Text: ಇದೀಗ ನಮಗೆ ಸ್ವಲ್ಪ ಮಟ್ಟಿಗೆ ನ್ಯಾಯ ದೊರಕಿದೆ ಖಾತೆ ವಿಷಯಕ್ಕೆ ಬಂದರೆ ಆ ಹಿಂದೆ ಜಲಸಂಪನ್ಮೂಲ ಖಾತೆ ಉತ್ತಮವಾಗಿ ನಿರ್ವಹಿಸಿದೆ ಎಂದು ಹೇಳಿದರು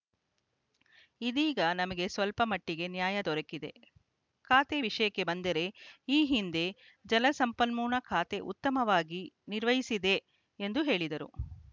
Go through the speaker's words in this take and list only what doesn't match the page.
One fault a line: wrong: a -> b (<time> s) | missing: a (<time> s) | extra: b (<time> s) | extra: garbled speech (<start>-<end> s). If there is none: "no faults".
wrong: ಆ -> ಈ (6.1 s)